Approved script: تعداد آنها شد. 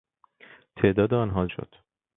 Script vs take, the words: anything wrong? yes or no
no